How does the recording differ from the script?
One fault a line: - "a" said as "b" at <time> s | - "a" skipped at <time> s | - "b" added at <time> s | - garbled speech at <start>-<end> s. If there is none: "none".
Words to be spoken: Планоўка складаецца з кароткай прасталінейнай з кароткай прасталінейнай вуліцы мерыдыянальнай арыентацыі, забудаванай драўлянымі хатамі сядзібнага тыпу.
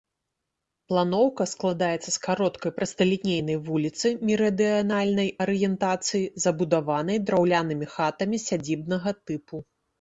- "з кароткай прасталінейнай" skipped at 3.6 s